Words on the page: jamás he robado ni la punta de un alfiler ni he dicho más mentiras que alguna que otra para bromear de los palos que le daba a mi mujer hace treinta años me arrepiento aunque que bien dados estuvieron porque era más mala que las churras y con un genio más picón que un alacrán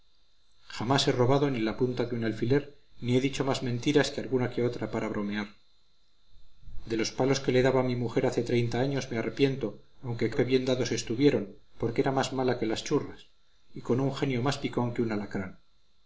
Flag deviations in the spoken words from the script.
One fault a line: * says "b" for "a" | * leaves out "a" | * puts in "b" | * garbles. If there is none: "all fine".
all fine